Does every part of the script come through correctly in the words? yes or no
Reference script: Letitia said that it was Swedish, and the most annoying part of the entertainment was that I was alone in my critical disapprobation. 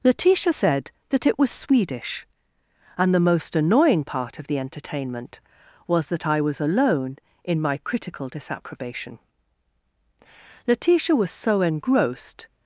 no